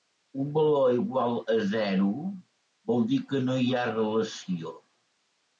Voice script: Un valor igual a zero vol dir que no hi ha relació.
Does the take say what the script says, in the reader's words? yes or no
yes